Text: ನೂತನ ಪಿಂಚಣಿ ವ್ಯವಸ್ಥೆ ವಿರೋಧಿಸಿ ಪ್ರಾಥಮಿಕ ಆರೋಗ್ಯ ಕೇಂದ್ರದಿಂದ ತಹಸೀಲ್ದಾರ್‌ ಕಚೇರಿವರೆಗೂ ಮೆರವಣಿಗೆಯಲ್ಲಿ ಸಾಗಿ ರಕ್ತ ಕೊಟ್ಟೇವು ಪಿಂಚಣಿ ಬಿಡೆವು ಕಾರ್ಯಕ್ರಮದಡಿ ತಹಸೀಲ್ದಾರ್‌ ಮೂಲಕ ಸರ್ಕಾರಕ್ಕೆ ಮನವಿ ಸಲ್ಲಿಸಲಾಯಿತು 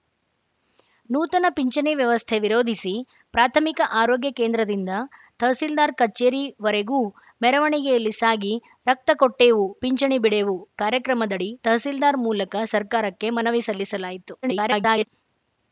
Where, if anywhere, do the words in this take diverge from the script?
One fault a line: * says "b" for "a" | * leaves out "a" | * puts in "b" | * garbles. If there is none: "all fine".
* garbles